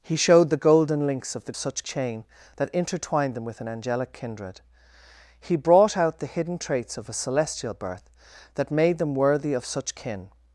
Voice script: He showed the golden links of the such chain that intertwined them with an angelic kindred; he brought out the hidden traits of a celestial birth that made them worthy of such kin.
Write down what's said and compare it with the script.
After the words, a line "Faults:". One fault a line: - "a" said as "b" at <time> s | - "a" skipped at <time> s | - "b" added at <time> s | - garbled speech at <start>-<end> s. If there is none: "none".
He showed the golden links of the such chain that intertwined them with an angelic kindred; he brought out the hidden traits of a celestial birth that made them worthy of such kin.
Faults:
none